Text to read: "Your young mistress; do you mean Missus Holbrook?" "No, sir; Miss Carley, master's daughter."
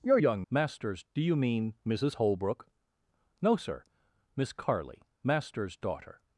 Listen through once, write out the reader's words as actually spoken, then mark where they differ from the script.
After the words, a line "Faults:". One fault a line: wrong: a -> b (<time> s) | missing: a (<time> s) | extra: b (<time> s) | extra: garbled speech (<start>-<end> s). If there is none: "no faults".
"Your young master's; do you mean Missus Holbrook?" "No, sir; Miss Carley, master's daughter."
Faults:
wrong: mistress -> master's (0.5 s)